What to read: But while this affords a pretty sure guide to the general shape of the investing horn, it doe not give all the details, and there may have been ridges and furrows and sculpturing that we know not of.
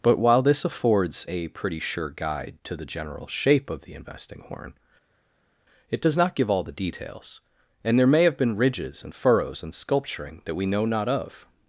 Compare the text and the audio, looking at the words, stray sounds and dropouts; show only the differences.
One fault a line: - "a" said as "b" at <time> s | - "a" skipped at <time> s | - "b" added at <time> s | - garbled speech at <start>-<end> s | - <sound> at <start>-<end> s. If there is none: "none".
- "doe" said as "does" at 6.0 s